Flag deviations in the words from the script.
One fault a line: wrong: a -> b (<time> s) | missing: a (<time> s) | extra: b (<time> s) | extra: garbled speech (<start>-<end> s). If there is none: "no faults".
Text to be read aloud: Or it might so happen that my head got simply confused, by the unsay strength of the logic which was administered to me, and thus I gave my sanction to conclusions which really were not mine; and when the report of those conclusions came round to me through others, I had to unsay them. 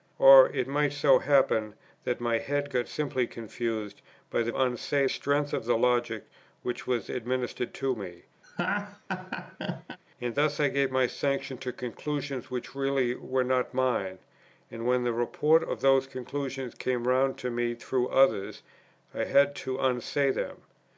no faults